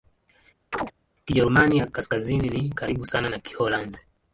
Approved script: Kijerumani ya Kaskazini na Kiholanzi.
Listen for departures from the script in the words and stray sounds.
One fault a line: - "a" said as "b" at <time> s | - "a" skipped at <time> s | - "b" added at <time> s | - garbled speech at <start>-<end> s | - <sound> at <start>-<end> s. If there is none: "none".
- chirp at 0.7-0.9 s
- "ni karibu sana" added at 2.5 s